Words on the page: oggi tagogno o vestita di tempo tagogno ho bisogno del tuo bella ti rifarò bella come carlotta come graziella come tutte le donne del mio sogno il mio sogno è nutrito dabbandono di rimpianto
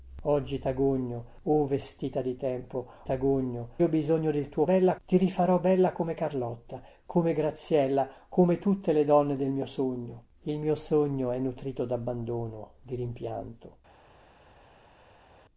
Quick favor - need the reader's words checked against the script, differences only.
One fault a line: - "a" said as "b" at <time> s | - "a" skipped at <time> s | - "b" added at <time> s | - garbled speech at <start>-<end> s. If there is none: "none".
none